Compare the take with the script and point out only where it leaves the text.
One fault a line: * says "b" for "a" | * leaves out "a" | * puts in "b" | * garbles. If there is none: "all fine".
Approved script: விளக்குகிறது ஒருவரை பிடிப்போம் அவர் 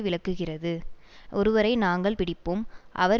* puts in "நாங்கள்"